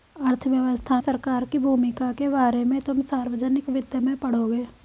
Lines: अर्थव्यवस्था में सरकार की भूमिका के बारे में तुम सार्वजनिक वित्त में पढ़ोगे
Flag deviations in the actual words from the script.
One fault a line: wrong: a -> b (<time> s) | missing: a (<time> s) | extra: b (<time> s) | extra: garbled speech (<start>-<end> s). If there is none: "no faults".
missing: में (1.0 s)